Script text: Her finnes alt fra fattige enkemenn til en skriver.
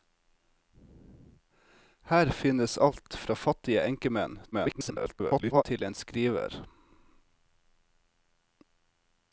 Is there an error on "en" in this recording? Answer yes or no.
no